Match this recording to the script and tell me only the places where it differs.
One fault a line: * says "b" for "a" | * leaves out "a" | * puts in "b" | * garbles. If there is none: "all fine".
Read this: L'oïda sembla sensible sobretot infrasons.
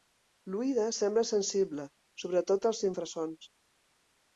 * puts in "als"